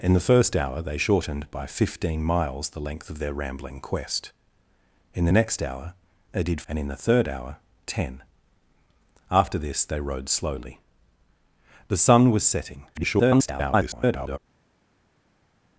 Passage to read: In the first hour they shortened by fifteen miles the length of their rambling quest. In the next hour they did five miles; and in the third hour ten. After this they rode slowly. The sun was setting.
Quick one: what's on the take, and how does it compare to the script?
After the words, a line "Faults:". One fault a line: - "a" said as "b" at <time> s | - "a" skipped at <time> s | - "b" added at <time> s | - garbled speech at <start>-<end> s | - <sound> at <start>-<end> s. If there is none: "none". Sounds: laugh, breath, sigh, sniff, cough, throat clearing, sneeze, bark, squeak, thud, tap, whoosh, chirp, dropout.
In the first hour they shortened by fifteen miles the length of their rambling quest. In the next hour they did; and in the third hour ten. After this they rode slowly. The sun was setting. [garbled]
Faults:
- "five miles" skipped at 6.6 s
- garbled speech at 12.9-14.4 s